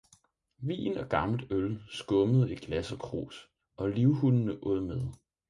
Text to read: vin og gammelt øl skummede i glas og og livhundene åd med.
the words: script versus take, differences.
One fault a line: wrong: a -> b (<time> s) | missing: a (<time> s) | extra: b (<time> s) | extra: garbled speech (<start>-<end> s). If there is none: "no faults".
extra: krus (3.0 s)